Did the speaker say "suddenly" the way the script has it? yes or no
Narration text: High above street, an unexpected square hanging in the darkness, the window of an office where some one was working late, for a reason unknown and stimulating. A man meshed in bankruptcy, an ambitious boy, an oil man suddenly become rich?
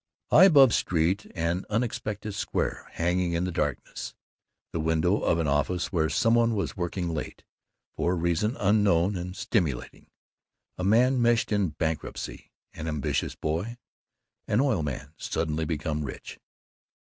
yes